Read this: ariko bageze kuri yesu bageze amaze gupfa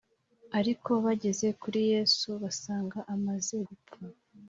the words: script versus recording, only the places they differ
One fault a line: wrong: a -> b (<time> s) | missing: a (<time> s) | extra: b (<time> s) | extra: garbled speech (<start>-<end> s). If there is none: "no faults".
wrong: bageze -> basanga (2.4 s)